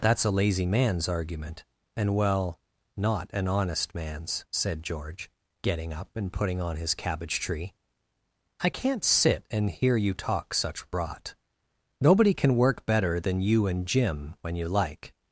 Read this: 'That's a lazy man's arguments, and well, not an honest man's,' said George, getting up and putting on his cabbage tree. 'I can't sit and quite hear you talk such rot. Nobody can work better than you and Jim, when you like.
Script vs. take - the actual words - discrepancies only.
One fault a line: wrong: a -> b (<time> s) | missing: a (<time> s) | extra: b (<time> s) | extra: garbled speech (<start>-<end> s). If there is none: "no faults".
wrong: arguments -> argument (1.1 s)
missing: quite (9.7 s)